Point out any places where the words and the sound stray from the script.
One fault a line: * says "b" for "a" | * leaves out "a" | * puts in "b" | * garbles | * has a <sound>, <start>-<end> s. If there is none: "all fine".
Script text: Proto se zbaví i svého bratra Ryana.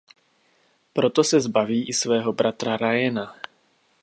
all fine